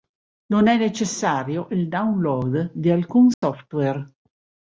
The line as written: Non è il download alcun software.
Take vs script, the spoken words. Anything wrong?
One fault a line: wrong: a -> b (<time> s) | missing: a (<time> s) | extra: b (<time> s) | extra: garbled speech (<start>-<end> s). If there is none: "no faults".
extra: necessario (0.8 s)
extra: di (2.7 s)